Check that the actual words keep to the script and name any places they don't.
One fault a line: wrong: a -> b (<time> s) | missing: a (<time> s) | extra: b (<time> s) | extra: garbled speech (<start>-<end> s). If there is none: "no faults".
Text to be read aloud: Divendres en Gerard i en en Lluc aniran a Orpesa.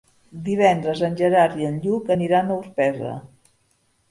missing: en (1.8 s)